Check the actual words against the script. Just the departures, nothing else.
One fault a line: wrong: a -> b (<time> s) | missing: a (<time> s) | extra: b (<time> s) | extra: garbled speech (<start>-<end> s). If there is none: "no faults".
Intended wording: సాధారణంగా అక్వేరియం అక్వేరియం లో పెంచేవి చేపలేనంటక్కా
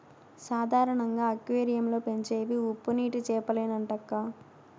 missing: అక్వేరియం (1.9 s)
extra: ఉప్పునీటి (2.7 s)